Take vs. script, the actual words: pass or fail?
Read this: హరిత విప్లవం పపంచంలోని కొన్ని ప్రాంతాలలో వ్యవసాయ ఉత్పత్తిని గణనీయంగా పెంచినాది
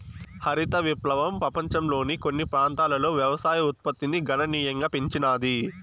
pass